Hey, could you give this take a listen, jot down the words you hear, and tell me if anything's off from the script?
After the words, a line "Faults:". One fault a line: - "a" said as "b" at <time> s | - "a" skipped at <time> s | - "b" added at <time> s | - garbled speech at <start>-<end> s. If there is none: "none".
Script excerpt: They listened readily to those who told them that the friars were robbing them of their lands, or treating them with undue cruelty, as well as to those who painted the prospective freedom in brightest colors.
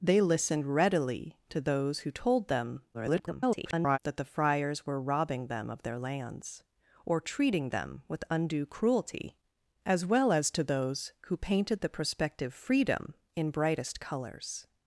They listened readily to those who told them [garbled] that the friars were robbing them of their lands, or treating them with undue cruelty, as well as to those who painted the prospective freedom in brightest colors.
Faults:
- garbled speech at 2.9-4.0 s